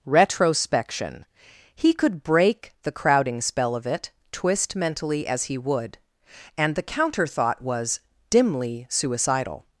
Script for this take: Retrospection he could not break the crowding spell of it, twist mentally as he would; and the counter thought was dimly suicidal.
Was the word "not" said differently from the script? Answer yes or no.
yes